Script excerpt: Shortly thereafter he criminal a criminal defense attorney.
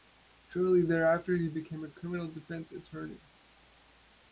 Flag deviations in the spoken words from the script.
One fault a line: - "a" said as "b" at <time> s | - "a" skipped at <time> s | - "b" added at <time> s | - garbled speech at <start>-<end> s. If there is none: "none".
- "criminal" said as "became" at 1.5 s